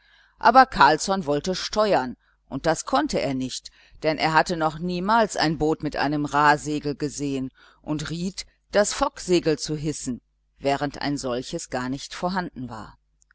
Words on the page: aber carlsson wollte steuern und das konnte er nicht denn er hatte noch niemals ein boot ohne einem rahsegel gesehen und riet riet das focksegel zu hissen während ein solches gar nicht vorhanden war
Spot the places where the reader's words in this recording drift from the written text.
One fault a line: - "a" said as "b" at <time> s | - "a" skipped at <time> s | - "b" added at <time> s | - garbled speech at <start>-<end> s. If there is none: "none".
- "ohne" said as "mit" at 5.8 s
- "riet" skipped at 8.5 s